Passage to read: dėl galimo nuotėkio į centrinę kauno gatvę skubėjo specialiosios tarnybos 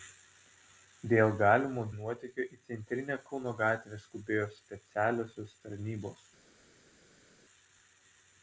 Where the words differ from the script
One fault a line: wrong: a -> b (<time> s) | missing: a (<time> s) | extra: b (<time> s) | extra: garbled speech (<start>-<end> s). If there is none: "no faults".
no faults